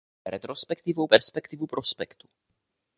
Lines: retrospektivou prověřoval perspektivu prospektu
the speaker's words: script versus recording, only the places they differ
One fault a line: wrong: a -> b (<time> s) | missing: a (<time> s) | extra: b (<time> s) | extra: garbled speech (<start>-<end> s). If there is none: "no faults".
missing: prověřoval (1.1 s)